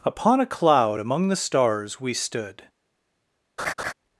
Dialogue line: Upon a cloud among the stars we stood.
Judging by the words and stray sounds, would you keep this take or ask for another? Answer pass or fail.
fail